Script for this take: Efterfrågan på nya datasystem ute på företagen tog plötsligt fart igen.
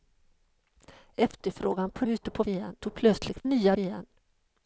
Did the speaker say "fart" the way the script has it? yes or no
no